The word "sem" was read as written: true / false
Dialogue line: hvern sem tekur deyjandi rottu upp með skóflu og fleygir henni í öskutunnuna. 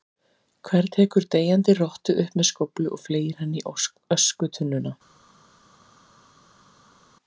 false